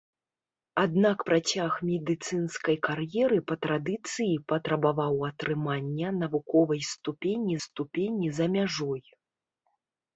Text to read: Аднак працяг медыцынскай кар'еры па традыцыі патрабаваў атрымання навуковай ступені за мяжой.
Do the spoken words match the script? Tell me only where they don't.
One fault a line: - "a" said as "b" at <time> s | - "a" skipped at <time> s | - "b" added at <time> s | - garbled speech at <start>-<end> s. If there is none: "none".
- "ступені" added at 7.7 s